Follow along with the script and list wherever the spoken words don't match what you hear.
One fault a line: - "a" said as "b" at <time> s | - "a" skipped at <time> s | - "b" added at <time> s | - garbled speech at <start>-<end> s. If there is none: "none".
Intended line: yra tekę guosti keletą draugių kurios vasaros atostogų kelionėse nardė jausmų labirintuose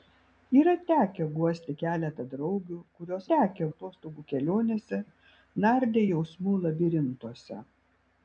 - "vasaros" said as "tekę" at 3.3 s